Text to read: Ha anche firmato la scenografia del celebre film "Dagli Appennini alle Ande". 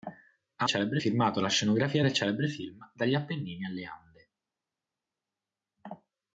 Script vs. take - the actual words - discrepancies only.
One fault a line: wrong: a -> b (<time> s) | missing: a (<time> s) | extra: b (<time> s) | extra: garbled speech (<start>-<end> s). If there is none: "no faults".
wrong: anche -> celebre (0.6 s)